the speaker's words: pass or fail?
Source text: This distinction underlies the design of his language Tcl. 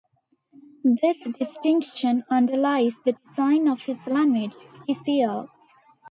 pass